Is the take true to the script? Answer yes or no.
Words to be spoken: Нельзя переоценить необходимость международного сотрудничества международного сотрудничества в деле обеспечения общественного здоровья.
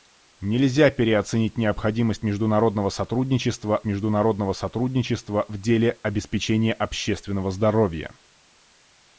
yes